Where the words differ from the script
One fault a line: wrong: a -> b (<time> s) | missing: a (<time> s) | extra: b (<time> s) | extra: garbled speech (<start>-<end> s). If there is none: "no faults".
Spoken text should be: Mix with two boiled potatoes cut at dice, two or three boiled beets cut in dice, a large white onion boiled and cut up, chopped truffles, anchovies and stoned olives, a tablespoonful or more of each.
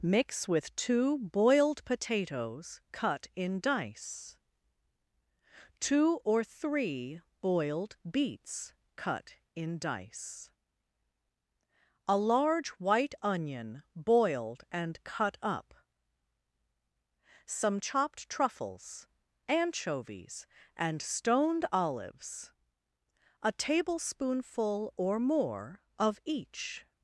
wrong: at -> in (3.4 s)
extra: some (17.5 s)